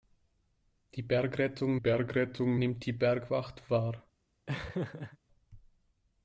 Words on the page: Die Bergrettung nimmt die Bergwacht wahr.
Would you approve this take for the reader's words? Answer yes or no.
no